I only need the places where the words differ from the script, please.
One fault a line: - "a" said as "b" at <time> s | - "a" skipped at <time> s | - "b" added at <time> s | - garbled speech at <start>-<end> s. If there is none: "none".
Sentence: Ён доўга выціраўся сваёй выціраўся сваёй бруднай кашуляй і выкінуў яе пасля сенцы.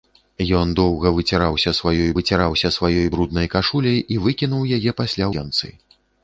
none